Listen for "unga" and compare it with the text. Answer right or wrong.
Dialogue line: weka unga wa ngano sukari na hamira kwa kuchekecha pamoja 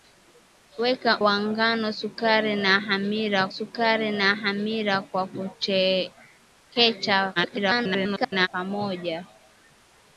wrong